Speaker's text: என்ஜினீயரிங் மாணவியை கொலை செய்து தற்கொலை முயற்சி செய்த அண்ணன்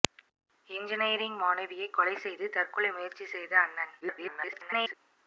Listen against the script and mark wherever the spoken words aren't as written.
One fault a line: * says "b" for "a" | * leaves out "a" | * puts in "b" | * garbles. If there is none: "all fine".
* garbles